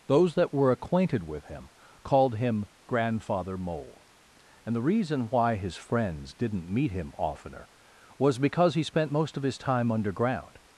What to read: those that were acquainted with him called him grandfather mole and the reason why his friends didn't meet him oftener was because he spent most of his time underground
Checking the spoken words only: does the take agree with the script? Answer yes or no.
yes